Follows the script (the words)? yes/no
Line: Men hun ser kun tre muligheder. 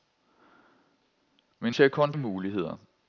no